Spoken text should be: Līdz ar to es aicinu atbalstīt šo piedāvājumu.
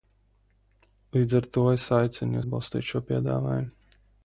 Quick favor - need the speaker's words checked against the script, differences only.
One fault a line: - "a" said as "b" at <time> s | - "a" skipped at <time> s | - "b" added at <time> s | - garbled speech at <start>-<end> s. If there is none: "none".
none